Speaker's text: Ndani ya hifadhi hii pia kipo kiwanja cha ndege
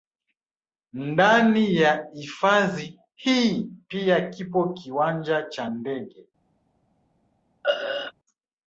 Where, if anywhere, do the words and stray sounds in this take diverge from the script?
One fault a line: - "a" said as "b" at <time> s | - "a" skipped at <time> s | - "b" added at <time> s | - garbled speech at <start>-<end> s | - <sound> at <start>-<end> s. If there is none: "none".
- throat clearing at 7.6-8.1 s